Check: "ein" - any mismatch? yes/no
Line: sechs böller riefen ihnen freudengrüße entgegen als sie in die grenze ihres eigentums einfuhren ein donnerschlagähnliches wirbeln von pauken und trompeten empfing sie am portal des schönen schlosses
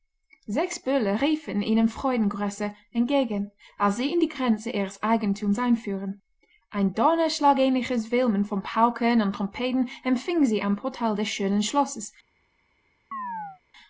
no